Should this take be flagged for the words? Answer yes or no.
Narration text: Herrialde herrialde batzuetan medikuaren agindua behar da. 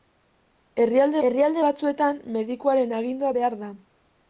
no